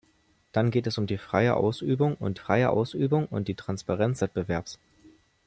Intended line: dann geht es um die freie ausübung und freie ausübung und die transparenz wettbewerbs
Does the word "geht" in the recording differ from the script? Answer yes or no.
no